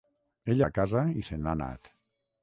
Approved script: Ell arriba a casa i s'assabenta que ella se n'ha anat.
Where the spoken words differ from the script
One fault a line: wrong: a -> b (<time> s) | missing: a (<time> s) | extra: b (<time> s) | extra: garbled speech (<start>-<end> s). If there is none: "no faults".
missing: arriba (0.6 s)
missing: s'assabenta que ella (1.2 s)